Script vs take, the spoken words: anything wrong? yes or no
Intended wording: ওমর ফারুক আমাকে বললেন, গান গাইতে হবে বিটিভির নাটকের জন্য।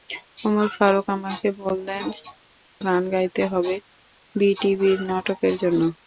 no